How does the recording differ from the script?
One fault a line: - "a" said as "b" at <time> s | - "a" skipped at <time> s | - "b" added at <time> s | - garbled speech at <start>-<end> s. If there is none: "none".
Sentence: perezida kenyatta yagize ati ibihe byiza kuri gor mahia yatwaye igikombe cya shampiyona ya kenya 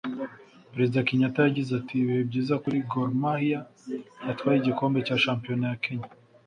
none